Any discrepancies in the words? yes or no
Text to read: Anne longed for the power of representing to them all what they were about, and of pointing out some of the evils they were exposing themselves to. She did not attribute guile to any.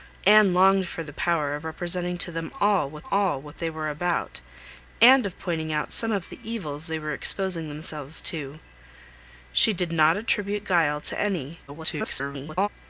yes